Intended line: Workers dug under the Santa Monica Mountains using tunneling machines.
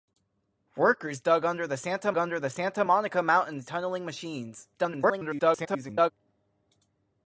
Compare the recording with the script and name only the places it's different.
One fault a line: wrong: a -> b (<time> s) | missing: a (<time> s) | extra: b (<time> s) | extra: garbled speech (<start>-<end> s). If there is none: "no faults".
extra: under the Santa (2.2 s)
missing: using (3.7 s)
extra: garbled speech (4.7-6.1 s)